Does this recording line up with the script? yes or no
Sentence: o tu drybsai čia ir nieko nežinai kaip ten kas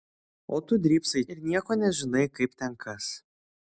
no